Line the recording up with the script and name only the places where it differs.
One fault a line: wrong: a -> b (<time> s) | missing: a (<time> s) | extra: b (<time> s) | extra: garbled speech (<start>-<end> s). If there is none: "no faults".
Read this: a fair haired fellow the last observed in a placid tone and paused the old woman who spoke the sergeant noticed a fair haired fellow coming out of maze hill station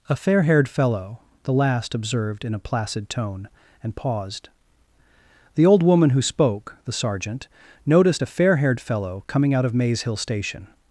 no faults